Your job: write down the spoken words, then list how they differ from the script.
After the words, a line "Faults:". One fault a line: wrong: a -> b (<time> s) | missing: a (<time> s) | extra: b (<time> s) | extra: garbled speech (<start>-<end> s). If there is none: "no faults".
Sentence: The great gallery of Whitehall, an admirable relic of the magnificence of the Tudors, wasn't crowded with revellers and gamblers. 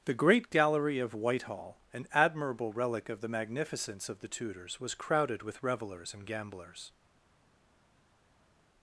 The great gallery of Whitehall, an admirable relic of the magnificence of the Tudors, was crowded with revellers and gamblers.
Faults:
wrong: wasn't -> was (4.8 s)